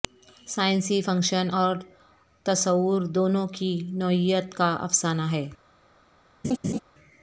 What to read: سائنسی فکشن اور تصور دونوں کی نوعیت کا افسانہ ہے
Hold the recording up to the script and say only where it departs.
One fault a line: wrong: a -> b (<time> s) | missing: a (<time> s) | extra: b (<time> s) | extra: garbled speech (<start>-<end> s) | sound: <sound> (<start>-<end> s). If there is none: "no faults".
sound: laugh (6.4-6.8 s)